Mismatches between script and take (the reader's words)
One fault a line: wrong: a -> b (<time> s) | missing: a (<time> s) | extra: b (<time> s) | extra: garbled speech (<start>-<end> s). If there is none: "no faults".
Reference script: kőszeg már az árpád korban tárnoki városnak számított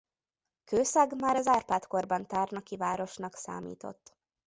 no faults